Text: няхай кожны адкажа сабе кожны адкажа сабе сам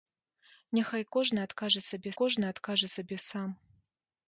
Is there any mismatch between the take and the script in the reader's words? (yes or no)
no